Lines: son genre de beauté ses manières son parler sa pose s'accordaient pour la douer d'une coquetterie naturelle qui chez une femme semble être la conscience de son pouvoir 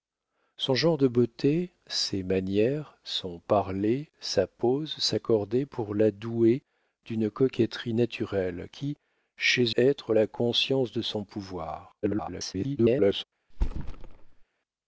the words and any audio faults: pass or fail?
fail